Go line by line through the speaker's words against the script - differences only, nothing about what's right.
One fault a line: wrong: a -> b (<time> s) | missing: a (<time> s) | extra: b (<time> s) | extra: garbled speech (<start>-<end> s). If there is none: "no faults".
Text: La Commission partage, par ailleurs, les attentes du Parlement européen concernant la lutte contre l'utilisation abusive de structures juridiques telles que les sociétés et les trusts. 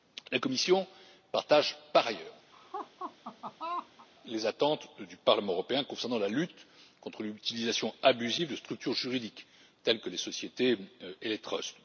no faults